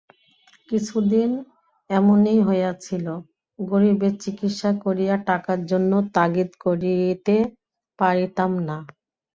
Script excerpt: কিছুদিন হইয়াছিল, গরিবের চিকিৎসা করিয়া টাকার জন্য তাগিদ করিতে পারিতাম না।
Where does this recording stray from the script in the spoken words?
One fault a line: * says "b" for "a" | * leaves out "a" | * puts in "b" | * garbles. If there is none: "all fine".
* puts in "এমনি"